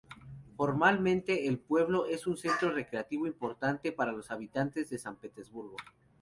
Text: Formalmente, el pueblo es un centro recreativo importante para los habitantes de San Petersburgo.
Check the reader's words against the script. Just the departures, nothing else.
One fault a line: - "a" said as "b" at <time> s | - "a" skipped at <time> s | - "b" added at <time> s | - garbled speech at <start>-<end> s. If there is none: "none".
none